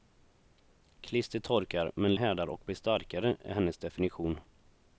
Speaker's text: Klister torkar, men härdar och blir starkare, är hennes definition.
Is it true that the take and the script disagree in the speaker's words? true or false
false